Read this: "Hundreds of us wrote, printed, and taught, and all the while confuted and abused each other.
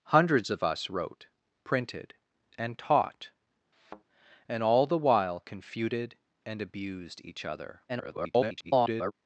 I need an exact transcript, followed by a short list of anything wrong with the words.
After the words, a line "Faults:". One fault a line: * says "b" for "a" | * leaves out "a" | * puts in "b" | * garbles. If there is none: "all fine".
"Hundreds of us wrote, printed, and taught, and all the while confuted and abused each other. [garbled]
Faults:
* garbles